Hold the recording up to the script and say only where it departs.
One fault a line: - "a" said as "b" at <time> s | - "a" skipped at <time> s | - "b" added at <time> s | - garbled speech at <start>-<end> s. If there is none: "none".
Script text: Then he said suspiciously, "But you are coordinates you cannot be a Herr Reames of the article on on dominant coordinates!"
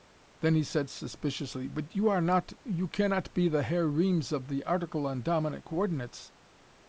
- "coordinates" said as "not" at 2.2 s
- "a" said as "the" at 3.5 s
- "on" skipped at 5.2 s